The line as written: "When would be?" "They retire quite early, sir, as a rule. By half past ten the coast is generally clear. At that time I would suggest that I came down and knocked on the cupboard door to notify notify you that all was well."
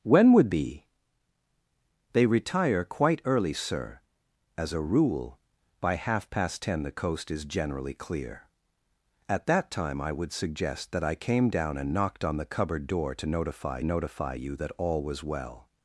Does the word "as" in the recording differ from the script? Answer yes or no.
no